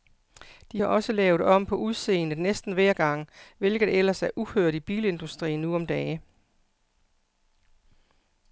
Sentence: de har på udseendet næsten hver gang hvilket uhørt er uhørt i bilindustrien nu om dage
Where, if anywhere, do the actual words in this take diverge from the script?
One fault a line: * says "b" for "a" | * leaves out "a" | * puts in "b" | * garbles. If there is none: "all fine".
* puts in "også lavet om"
* says "ellers" for "uhørt"